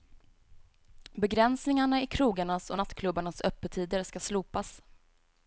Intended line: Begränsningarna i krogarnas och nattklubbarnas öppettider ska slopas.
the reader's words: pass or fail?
pass